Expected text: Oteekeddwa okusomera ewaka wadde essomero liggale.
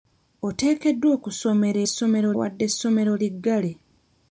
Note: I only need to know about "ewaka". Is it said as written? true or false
false